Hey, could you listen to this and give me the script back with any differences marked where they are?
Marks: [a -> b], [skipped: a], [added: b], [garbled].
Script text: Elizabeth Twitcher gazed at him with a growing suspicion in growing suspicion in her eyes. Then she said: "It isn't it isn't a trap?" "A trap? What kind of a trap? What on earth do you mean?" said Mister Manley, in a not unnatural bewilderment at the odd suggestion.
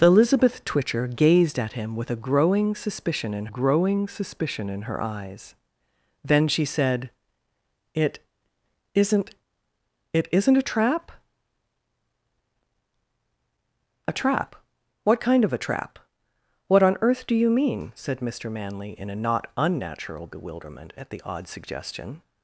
Elizabeth Twitcher gazed at him with a growing suspicion in growing suspicion in her eyes. Then she said: "It isn't it isn't a trap?" "A trap? What kind of a trap? What on earth do you mean?" said Mister Manley, in a not unnatural bewilderment at the odd suggestion.